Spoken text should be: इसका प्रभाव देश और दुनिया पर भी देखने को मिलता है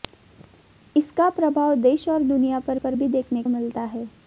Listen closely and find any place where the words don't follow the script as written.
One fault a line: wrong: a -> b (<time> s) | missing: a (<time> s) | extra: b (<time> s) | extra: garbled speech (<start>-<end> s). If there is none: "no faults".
extra: पर (2.8 s)
missing: को (3.4 s)